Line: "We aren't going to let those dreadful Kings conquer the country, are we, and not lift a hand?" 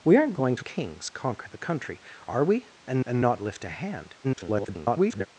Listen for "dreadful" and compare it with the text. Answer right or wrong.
wrong